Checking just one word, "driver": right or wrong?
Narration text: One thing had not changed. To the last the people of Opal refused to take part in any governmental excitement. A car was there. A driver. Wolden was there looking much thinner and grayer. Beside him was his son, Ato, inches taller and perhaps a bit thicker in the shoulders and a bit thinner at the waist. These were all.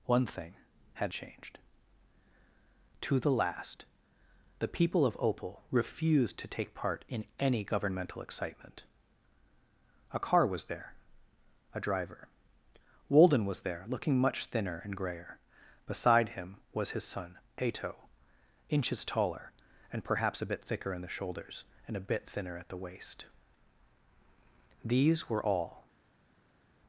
right